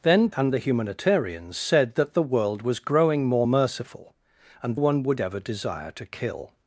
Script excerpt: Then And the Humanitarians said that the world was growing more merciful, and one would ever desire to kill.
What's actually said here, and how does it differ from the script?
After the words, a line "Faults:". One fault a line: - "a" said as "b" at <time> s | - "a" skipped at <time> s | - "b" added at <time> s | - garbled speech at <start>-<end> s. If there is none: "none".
Then And the Humanitarians said that the world was growing more merciful, and one would ever desire to kill.
Faults:
none